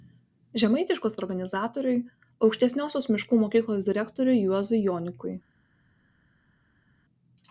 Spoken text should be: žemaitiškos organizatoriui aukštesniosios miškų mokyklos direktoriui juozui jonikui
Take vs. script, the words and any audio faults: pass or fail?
pass